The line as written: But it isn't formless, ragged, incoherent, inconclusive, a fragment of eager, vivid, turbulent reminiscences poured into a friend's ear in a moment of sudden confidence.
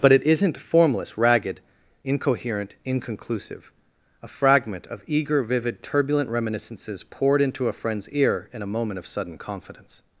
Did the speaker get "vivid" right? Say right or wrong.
right